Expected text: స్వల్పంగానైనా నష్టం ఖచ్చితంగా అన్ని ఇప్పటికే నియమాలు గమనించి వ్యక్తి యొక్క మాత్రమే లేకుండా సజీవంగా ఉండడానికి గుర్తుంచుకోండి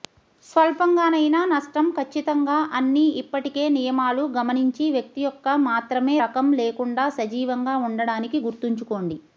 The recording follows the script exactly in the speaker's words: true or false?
false